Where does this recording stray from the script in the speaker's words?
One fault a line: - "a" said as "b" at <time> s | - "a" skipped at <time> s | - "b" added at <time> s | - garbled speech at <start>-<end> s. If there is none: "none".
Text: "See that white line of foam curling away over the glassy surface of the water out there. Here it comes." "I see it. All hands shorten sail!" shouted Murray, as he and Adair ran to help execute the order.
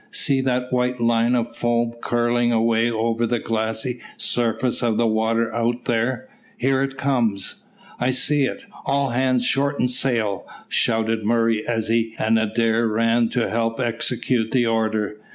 none